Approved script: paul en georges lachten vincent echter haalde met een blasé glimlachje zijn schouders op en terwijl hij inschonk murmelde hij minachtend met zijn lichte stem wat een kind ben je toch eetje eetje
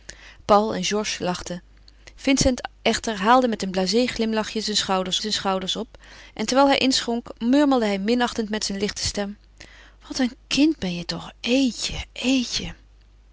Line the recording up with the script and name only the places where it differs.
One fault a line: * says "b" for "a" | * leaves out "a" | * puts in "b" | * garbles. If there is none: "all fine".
* puts in "zijn schouders"